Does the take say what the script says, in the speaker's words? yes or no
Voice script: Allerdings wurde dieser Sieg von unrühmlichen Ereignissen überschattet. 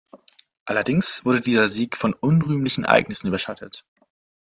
yes